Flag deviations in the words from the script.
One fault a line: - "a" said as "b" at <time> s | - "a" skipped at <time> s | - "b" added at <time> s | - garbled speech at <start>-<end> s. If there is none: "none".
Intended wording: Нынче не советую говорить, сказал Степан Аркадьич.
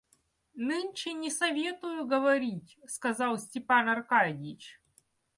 none